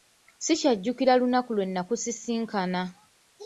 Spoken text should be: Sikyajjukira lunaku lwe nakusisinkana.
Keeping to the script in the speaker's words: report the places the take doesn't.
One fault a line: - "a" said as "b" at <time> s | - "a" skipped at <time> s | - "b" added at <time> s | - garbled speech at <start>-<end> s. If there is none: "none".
none